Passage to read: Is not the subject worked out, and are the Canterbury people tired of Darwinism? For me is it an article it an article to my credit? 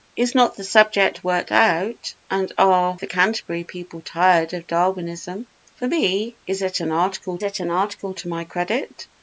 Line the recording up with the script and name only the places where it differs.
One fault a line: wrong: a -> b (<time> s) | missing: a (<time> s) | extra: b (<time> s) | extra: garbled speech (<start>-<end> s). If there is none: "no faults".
no faults